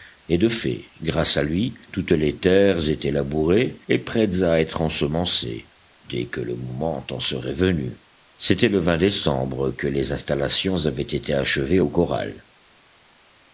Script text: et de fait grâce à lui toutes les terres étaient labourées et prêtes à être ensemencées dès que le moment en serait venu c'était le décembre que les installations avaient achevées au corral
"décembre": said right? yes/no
yes